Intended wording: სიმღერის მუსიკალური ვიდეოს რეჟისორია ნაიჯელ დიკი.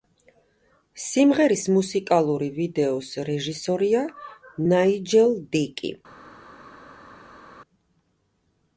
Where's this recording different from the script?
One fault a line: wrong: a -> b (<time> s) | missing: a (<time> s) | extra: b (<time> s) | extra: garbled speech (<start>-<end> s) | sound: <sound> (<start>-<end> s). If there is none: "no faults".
no faults